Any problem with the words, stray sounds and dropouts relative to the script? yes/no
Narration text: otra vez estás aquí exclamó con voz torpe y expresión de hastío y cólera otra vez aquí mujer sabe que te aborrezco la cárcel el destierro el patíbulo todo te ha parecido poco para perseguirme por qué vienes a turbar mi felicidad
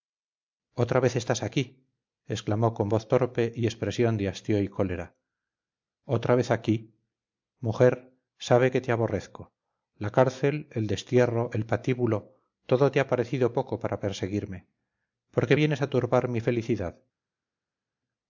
no